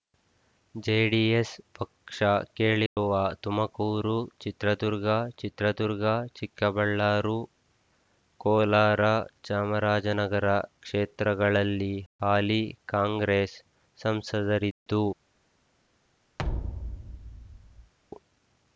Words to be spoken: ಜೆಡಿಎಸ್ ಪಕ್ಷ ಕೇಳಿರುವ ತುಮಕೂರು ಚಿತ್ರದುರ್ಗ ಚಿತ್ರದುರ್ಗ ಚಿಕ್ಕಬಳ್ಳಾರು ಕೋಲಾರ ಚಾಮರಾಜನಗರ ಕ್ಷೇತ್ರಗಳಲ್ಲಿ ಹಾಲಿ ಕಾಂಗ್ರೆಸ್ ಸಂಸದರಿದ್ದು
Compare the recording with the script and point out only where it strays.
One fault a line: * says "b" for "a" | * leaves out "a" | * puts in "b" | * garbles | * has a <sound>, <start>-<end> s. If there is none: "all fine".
* has a dropout, 2.9-3.0 s
* has a thud, 16.4-17.9 s